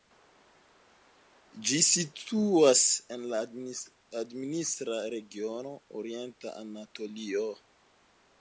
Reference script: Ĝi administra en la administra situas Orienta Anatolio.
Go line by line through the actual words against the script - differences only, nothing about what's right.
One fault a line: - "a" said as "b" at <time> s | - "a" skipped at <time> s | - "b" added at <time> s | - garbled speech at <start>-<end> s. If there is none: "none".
- "administra" said as "situas" at 1.9 s
- "situas" said as "regiono" at 5.2 s